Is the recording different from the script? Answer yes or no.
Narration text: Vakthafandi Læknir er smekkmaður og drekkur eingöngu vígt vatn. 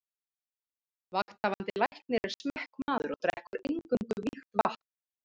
no